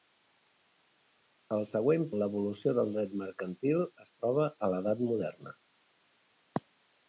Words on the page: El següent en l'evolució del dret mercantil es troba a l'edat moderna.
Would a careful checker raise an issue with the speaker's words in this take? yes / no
no